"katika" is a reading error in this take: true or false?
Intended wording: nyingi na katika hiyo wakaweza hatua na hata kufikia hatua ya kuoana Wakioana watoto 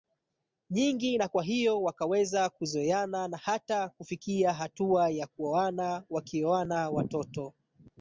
true